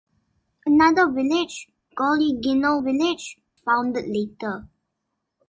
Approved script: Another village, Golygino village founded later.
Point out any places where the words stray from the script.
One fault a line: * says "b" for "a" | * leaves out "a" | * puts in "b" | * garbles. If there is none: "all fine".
all fine